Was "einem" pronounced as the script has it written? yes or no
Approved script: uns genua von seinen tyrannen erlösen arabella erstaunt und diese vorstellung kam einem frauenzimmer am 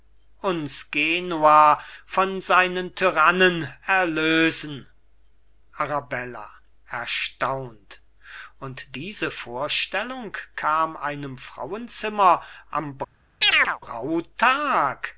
yes